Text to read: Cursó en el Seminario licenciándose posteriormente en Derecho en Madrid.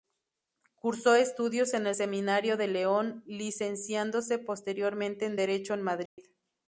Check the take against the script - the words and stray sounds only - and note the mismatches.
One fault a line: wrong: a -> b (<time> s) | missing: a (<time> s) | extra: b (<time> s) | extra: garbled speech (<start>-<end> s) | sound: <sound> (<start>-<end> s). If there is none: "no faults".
extra: estudios (1.1 s)
extra: de León (2.6 s)
sound: dropout (6.1-6.2 s)